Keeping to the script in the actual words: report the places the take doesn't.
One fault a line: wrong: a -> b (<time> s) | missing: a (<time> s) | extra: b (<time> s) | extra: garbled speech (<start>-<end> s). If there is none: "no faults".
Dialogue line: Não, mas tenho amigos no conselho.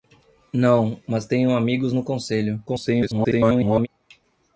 extra: garbled speech (2.7-3.9 s)